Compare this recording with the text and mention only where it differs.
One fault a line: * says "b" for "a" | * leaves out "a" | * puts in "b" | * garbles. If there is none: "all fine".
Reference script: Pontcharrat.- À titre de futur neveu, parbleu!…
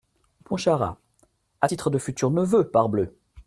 all fine